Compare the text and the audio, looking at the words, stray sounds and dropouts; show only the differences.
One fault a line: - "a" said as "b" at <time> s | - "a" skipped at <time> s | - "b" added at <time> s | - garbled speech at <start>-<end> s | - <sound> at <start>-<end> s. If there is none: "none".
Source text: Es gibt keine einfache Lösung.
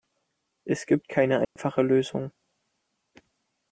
- dropout at 1.4-1.6 s